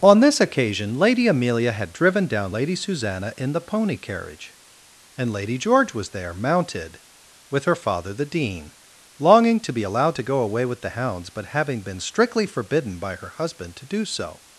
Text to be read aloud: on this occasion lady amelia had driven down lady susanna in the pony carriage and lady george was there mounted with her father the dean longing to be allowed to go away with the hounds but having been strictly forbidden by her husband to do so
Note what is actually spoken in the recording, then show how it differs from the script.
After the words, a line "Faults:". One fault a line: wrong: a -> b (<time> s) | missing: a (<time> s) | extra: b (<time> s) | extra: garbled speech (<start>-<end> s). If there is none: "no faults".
on this occasion lady amelia had driven down lady susanna in the pony carriage and lady george was there mounted with her father the dean longing to be allowed to go away with the hounds but having been strictly forbidden by her husband to do so
Faults:
no faults